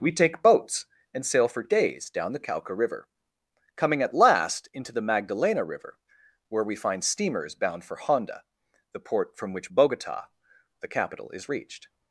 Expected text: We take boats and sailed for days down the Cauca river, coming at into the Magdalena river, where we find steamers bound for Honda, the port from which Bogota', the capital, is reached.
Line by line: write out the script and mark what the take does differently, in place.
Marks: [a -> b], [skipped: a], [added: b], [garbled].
We take boats and [sailed -> sail] for days down the Cauca river, coming at [added: last] into the Magdalena river, where we find steamers bound for Honda, the port from which Bogota', the capital, is reached.